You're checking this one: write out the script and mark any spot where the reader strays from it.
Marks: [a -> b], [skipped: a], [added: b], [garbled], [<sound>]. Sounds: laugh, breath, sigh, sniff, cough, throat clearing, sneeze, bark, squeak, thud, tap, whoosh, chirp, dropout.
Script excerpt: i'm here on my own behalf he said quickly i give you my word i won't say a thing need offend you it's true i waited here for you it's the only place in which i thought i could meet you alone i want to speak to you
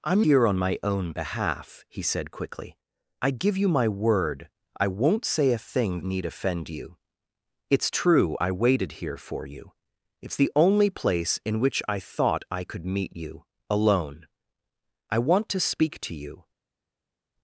i'm here on my own behalf he said quickly i give you my word i won't say a thing need offend you it's true i waited here for you it's the only place in which i thought i could meet you alone i want to speak to you